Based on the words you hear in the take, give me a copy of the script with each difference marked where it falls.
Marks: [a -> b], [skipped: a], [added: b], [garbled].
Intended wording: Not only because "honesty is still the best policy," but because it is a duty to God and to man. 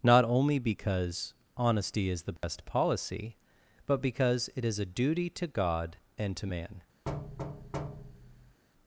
Not only because "honesty is [skipped: still] the best policy," but because it is a duty to God and to man.